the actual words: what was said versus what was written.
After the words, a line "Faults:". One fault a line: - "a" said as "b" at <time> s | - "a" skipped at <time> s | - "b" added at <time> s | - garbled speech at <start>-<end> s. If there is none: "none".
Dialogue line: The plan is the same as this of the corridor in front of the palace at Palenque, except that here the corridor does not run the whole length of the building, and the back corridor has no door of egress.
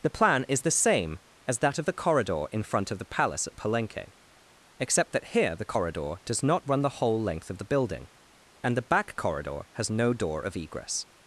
The plan is the same as that of the corridor in front of the palace at Palenque, except that here the corridor does not run the whole length of the building, and the back corridor has no door of egress.
Faults:
- "this" said as "that" at 1.6 s